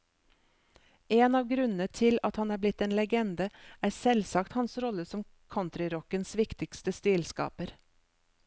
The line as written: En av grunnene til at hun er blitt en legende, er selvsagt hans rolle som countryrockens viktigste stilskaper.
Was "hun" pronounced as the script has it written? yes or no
no